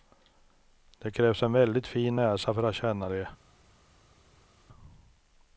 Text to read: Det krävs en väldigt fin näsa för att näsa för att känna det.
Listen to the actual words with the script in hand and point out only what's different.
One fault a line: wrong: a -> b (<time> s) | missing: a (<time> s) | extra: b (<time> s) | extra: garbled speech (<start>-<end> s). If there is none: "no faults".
missing: näsa för att (2.8 s)